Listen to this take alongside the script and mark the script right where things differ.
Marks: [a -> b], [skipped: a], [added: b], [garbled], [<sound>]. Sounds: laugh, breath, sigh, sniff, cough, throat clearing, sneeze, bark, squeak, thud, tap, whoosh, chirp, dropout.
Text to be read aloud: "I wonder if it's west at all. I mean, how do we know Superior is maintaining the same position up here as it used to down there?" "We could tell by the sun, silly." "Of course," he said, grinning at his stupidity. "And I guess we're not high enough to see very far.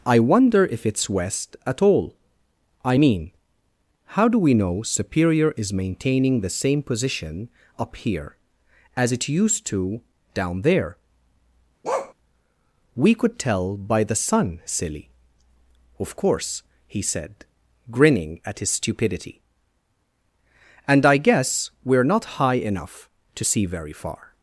"I wonder if it's west at all. I mean, how do we know Superior is maintaining the same position up here as it used to down there?" [bark] "We could tell by the sun, silly." "Of course," he said, grinning at his stupidity. "And I guess we're not high enough to see very far.